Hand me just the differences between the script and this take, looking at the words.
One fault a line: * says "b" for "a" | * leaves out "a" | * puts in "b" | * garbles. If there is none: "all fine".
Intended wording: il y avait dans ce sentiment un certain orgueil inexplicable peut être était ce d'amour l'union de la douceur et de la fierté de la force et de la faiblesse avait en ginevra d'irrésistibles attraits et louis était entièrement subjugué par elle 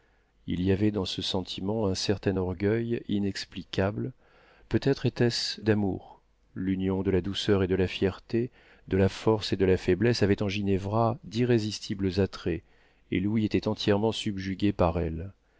all fine